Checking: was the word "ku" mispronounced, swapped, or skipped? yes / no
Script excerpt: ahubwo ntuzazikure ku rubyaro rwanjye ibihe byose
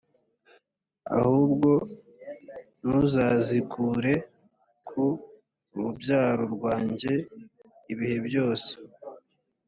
no